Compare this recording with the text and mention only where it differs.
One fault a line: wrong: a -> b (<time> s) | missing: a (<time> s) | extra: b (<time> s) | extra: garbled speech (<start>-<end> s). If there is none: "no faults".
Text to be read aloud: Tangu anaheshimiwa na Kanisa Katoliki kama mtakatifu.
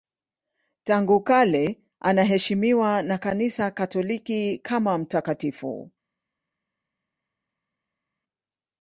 extra: kale (1.2 s)